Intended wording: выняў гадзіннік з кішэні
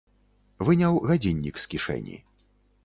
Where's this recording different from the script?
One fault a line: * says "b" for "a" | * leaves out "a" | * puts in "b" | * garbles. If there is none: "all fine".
all fine